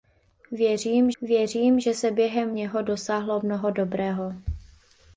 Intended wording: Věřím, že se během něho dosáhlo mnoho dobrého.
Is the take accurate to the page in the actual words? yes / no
no